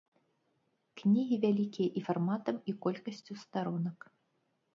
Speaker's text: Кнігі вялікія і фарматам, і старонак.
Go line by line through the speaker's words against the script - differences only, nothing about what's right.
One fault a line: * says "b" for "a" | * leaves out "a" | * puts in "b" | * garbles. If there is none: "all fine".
* puts in "колькасцю"